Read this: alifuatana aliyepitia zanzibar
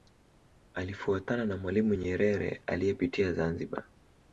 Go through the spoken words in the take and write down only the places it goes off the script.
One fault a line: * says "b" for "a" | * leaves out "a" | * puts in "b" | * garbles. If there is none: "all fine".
* puts in "na mwalimu nyerere"